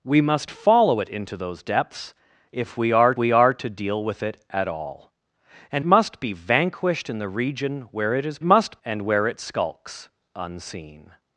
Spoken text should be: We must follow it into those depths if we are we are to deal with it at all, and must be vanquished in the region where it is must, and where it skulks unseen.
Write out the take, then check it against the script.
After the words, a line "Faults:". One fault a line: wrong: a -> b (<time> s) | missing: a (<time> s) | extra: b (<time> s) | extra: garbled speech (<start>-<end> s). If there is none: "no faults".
We must follow it into those depths if we are we are to deal with it at all, and must be vanquished in the region where it is must, and where it skulks unseen.
Faults:
no faults